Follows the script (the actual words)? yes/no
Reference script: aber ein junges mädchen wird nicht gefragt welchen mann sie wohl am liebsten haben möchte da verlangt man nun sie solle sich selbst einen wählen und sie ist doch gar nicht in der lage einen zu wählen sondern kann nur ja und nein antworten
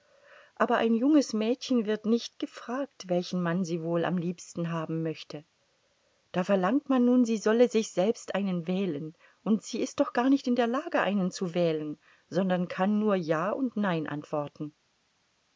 yes